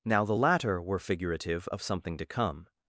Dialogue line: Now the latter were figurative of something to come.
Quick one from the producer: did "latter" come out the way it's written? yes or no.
yes